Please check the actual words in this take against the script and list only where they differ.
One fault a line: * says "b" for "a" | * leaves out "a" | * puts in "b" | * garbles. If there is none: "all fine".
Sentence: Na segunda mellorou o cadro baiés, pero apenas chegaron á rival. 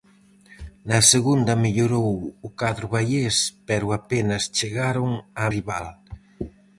all fine